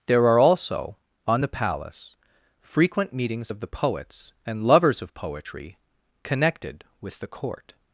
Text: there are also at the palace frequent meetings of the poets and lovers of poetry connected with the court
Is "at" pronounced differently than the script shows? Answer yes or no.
yes